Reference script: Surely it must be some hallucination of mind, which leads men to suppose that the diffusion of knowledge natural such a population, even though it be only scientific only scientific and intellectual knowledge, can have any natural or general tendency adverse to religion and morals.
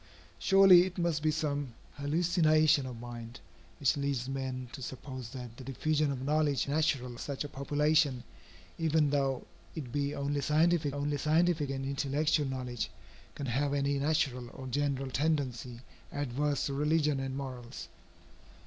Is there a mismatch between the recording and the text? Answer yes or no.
no